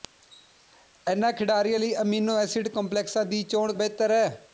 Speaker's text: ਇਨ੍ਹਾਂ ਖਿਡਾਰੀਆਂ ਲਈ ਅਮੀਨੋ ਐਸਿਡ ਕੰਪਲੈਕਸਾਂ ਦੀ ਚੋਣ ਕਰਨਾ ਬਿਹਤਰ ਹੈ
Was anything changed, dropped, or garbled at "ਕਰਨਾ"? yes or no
yes